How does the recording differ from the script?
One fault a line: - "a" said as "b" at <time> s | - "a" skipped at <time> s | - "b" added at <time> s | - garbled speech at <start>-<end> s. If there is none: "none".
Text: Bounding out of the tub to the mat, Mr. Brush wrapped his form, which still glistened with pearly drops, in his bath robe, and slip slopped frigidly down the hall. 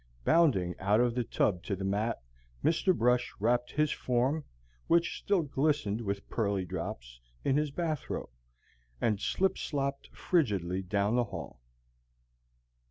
none